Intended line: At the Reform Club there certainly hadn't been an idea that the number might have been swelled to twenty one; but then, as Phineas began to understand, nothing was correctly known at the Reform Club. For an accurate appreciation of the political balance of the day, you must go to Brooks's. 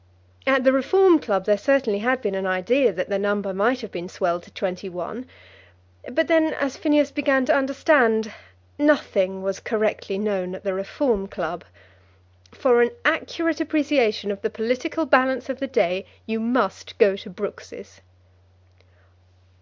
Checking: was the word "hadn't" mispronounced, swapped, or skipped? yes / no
yes